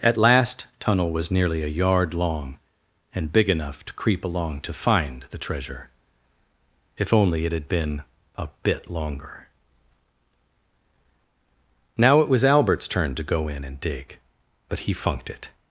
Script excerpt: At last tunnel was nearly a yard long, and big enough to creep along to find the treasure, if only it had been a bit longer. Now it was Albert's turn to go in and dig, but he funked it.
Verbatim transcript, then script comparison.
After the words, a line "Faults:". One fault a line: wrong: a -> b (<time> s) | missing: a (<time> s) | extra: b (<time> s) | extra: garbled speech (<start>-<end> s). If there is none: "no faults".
At last tunnel was nearly a yard long, and big enough to creep along to find the treasure, if only it had been a bit longer. Now it was Albert's turn to go in and dig, but he funked it.
Faults:
no faults